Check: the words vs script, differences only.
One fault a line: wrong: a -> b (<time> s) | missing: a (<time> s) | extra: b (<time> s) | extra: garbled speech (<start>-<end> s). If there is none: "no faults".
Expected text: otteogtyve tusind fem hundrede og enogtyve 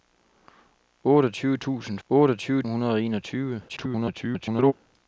wrong: fem -> otteogtyve (2.1 s)
extra: garbled speech (3.7-4.7 s)